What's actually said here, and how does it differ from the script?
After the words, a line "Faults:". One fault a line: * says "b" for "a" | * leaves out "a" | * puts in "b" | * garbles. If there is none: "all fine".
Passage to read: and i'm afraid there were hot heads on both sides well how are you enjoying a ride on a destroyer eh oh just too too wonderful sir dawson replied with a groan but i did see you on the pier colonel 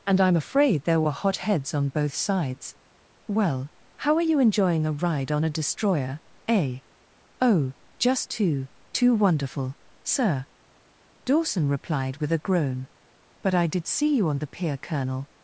and i'm afraid there were hot heads on both sides well how are you enjoying a ride on a destroyer eh oh just too too wonderful sir dawson replied with a groan but i did see you on the pier colonel
Faults:
all fine